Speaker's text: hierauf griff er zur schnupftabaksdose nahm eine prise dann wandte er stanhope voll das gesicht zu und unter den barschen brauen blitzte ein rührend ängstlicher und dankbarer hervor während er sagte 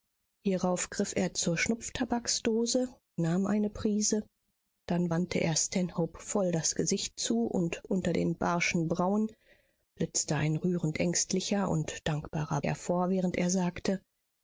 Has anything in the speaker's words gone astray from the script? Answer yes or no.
no